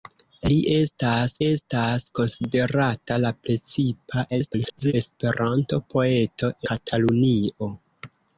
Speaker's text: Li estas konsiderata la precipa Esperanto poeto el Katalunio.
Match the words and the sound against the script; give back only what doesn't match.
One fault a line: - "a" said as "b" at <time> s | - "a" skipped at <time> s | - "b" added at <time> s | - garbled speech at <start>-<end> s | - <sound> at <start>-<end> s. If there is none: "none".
- "estas" added at 1.5 s
- garbled speech at 4.3-4.9 s
- "el" skipped at 6.5 s